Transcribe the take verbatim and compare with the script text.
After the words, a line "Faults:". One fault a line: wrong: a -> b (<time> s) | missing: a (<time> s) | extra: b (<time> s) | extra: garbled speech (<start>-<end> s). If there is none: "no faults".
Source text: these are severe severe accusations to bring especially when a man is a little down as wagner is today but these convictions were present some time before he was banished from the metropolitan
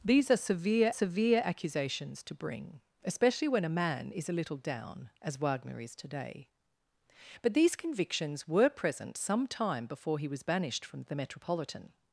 these are severe severe accusations to bring especially when a man is a little down as wagner is today but these convictions were present some time before he was banished from the metropolitan
Faults:
no faults